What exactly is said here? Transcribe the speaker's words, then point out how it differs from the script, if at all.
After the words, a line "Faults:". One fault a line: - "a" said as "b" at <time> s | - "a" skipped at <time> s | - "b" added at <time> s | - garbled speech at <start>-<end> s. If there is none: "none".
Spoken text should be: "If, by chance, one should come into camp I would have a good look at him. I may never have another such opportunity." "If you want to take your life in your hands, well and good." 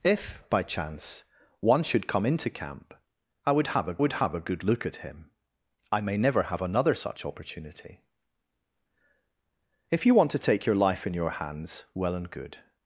"If, by chance, one should come into camp I would have a would have a good look at him. I may never have another such opportunity." "If you want to take your life in your hands, well and good."
Faults:
- "would have a" added at 4.0 s